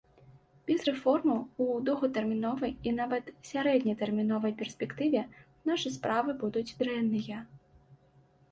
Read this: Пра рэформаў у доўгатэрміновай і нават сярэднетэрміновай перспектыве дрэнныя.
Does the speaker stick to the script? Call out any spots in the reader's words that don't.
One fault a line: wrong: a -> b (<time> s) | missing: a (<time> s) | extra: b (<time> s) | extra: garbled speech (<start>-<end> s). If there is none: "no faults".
wrong: Пра -> Без (0.7 s)
extra: нашы справы будуць (5.7 s)